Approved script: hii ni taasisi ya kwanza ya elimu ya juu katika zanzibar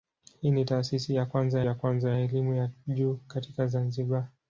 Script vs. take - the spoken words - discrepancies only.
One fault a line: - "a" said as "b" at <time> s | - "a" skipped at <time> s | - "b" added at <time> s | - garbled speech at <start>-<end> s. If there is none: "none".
- "kwanza ya" added at 1.7 s